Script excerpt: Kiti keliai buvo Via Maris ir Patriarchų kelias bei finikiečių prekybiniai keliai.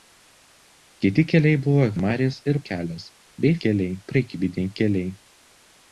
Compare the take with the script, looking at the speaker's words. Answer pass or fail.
fail